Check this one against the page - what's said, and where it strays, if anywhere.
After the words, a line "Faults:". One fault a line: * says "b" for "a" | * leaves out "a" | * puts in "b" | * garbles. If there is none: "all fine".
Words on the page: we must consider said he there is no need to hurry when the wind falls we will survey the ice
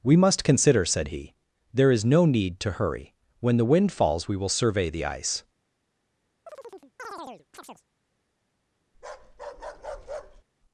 we must consider said he there is no need to hurry when the wind falls we will survey the ice
Faults:
all fine